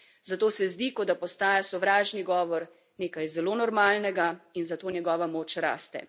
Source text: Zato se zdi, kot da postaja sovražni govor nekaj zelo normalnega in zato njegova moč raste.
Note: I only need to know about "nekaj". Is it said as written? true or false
true